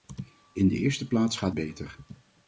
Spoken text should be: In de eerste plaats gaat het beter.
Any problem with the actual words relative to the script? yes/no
yes